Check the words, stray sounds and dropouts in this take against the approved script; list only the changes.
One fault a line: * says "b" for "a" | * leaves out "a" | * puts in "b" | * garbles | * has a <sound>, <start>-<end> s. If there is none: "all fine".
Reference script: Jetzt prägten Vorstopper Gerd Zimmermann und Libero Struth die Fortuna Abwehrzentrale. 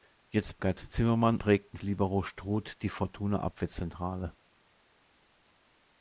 * leaves out "prägten Vorstopper"
* says "prägten" for "und"